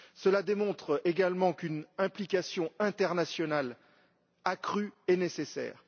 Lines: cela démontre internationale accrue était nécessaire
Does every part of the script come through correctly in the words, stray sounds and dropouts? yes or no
no